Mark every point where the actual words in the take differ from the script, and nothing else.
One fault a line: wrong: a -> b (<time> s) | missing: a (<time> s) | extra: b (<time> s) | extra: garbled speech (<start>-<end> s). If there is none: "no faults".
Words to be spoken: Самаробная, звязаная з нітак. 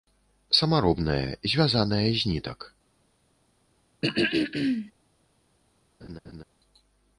no faults